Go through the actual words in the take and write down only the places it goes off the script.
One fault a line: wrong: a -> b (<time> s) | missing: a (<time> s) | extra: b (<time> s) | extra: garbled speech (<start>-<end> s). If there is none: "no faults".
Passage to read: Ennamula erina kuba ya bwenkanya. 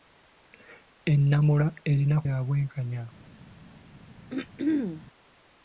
missing: kuba (2.2 s)